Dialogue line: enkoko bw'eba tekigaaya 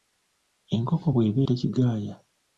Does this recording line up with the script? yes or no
yes